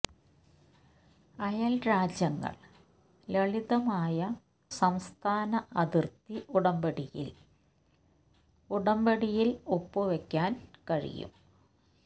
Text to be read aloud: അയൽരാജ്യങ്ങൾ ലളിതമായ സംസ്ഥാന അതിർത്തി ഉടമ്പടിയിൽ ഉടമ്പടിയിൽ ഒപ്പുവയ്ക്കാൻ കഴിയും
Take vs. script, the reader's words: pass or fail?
pass